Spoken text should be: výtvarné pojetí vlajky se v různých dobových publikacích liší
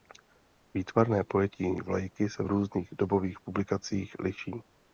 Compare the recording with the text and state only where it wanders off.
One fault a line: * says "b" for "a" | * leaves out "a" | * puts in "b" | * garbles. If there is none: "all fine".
all fine